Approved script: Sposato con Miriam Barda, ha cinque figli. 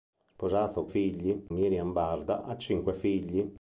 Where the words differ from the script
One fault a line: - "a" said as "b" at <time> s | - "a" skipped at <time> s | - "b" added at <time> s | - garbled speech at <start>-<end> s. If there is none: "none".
- "con" said as "figli" at 0.9 s